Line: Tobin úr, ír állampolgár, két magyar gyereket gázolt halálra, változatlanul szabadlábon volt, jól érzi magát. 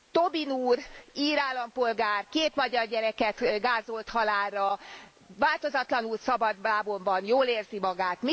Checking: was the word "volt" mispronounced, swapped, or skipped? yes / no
yes